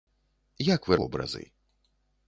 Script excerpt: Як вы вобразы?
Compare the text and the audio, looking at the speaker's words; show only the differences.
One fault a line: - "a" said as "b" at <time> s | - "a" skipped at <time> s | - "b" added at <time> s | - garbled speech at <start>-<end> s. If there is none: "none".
none